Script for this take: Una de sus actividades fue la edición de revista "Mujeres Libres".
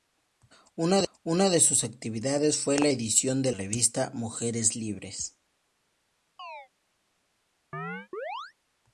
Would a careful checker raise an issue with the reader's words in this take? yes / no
no